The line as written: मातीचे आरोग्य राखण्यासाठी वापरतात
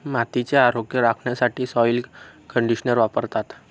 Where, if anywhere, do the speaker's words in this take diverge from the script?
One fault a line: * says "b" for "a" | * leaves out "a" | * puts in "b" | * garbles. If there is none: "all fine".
* puts in "सॉइल कंडिशनर"